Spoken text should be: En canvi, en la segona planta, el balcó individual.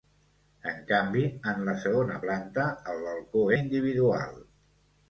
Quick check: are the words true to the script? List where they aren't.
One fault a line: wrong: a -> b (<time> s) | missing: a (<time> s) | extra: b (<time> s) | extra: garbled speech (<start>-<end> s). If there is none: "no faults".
no faults